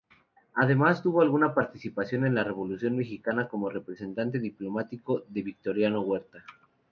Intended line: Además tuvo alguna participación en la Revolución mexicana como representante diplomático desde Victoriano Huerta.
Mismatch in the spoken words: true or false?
true